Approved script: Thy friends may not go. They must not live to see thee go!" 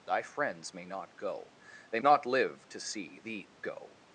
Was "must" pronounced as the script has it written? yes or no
no